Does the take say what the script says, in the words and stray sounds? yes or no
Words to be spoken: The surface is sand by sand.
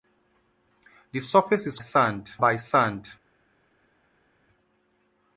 yes